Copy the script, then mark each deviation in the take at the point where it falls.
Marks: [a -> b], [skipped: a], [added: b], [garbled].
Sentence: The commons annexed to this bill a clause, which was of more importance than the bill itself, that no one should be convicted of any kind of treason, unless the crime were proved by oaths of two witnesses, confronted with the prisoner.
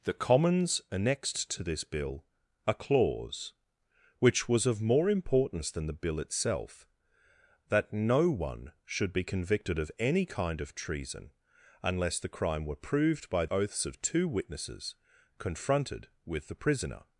The commons annexed to this bill a clause, which was of more importance than the bill itself, that no one should be convicted of any kind of treason, unless the crime were proved by oaths of two witnesses, confronted with the prisoner.